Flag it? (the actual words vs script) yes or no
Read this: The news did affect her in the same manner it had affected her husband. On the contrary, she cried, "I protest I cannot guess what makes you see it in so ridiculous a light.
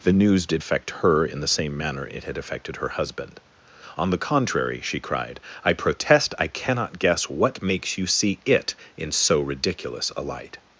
no